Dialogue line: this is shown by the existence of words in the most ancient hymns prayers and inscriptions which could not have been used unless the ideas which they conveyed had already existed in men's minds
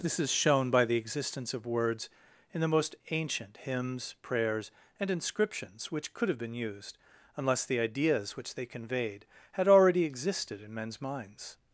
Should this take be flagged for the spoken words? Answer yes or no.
yes